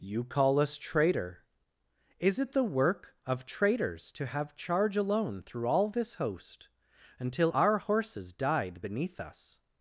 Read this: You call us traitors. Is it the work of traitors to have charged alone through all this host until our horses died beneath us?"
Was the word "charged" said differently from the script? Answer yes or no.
yes